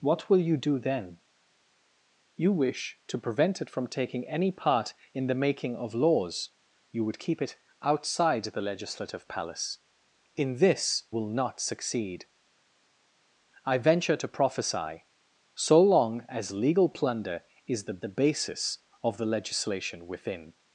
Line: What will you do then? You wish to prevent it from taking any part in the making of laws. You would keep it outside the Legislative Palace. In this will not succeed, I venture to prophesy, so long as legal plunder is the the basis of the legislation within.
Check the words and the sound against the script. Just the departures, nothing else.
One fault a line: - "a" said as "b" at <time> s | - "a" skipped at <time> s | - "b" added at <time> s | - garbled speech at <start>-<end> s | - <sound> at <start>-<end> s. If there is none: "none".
none